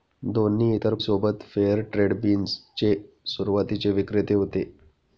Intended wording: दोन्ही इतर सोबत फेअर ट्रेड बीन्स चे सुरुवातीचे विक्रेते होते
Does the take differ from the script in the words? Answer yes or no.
no